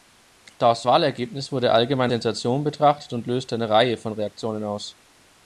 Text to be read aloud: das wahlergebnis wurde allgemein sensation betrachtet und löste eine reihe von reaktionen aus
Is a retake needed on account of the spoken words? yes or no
no